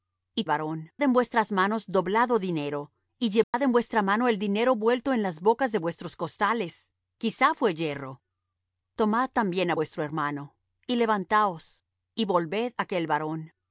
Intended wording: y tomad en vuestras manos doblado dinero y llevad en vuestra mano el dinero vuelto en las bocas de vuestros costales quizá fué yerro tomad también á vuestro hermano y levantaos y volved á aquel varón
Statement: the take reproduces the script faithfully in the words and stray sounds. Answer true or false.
false